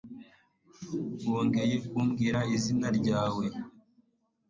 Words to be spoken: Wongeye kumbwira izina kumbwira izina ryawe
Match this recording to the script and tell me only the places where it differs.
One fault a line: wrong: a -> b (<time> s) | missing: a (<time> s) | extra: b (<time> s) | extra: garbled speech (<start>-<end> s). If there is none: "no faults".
missing: kumbwira izina (2.9 s)